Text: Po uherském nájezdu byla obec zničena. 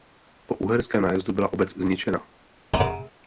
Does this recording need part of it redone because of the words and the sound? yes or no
yes